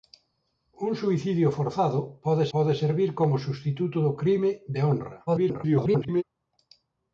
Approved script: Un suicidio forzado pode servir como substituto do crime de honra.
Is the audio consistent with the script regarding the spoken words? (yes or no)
no